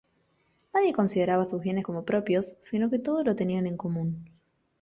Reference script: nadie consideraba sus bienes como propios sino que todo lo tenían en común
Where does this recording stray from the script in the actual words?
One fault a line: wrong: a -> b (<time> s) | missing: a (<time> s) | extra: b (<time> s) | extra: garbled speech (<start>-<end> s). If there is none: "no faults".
no faults